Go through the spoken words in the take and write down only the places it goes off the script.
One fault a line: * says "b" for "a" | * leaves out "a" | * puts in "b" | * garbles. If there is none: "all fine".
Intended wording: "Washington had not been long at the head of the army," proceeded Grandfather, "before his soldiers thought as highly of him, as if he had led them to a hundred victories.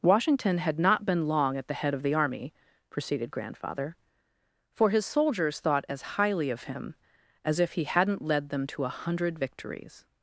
* says "for" for "before"
* says "hadn't" for "had"